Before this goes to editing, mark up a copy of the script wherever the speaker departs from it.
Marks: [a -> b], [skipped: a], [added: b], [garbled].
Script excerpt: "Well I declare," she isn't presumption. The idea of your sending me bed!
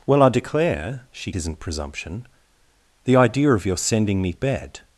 "Well I declare," she isn't presumption. The idea of your sending me bed!